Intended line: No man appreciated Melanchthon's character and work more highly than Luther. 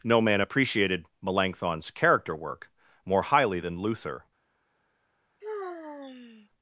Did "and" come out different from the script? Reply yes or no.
yes